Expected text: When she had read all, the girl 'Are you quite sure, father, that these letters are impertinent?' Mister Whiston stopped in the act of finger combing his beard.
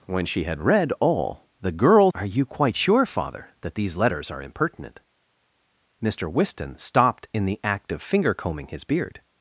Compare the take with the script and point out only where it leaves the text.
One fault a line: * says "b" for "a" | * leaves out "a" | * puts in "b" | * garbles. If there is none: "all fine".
all fine